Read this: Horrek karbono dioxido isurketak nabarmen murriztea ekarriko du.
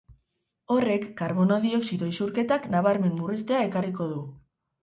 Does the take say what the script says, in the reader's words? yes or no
yes